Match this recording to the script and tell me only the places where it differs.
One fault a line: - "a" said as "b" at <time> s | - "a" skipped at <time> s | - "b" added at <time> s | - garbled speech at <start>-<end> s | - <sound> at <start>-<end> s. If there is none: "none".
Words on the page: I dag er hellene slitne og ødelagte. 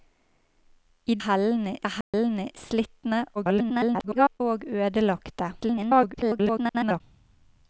- "dag" said as "hellene" at 1.2 s
- dropout at 2.0-2.1 s
- garbled speech at 3.3-4.4 s
- garbled speech at 5.6-7.0 s